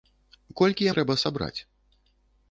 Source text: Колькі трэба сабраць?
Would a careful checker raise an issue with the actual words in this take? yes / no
no